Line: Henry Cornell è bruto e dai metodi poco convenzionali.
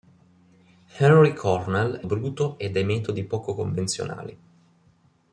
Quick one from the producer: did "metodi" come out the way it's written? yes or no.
yes